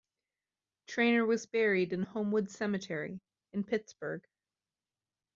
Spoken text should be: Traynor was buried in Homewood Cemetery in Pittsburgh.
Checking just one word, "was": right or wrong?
right